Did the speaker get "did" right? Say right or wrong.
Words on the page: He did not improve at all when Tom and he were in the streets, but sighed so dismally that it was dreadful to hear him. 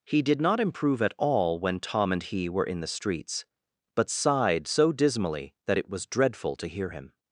right